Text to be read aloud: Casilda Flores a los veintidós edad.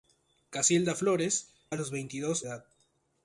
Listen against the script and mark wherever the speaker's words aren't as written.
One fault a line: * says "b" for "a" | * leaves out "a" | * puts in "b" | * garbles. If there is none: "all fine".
all fine